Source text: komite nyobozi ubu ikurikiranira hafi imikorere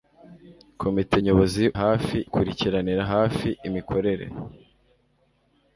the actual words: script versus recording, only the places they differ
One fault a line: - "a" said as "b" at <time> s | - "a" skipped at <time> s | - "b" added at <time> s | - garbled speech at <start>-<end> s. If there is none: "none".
- "ubu" said as "hafi" at 1.8 s